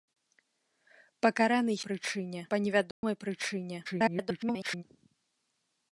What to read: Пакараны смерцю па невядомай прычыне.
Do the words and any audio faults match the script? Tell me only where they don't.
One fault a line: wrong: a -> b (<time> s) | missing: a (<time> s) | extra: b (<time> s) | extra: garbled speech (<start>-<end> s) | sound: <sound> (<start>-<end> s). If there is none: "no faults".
wrong: смерцю -> прычыне (1.9 s)
sound: dropout (2.9-3.0 s)
extra: garbled speech (3.8-4.8 s)